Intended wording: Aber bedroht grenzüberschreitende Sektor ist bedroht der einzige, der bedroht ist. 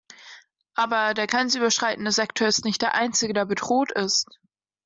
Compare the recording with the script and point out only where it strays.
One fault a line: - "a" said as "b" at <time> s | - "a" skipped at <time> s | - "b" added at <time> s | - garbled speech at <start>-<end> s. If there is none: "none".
- "bedroht" said as "der" at 1.1 s
- "bedroht" said as "nicht" at 2.6 s